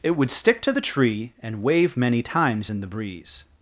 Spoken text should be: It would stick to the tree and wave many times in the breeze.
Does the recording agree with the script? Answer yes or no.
yes